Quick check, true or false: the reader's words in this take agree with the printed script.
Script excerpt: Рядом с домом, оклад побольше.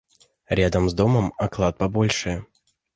true